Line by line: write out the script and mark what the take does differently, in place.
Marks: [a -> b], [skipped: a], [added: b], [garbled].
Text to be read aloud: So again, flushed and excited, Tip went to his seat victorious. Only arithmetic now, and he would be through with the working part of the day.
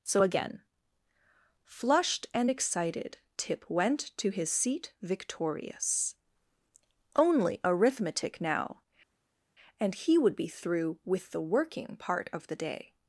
So again, flushed and excited, Tip went to his seat victorious. Only arithmetic now, and he would be through with the working part of the day.